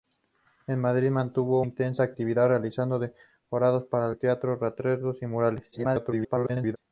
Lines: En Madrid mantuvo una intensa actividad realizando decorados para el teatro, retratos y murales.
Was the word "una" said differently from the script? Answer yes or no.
yes